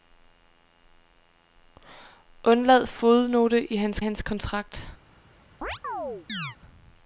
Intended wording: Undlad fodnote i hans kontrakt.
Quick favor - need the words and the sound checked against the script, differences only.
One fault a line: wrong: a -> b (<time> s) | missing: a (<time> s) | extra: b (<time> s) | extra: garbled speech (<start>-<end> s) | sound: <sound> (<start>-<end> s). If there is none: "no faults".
extra: hans (4.0 s)
sound: chirp (5.6-6.6 s)